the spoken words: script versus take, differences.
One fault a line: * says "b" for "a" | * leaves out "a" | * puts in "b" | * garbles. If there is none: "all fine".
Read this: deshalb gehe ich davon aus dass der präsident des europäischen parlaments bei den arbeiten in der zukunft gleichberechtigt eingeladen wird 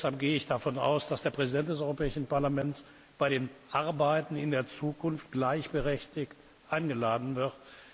all fine